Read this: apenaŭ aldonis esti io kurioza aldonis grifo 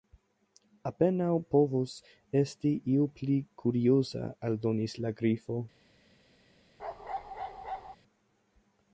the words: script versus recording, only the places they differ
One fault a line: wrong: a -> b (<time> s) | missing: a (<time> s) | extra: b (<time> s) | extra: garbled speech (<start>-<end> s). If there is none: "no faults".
wrong: aldonis -> povus (1.6 s)
extra: pli (3.2 s)
extra: la (5.0 s)